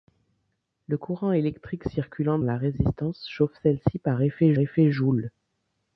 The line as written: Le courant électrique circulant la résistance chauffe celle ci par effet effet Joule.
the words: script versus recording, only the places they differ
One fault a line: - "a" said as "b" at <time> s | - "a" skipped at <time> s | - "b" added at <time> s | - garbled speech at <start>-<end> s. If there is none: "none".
none